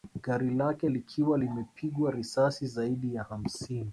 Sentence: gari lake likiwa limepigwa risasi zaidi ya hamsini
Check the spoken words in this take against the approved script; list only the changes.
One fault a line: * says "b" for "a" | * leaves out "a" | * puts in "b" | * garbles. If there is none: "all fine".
all fine